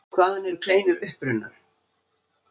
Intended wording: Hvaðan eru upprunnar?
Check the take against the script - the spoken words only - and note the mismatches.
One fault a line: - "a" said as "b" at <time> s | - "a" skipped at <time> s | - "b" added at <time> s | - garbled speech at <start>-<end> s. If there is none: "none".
- "kleinur" added at 0.7 s